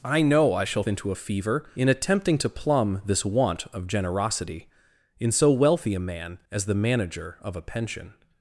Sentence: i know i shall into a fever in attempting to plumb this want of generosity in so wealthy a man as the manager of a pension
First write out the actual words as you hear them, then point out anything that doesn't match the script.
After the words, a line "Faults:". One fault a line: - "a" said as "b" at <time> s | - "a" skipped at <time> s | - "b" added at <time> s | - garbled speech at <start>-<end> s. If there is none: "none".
i know i shall into a fever in attempting to plumb this want of generosity in so wealthy a man as the manager of a pension
Faults:
none